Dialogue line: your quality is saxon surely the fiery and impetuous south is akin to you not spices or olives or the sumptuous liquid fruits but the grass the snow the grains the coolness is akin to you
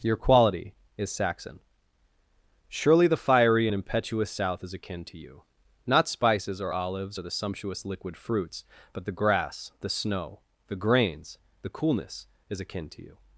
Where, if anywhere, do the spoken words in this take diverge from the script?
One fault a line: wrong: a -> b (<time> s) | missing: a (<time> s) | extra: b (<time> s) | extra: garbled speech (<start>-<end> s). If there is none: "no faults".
no faults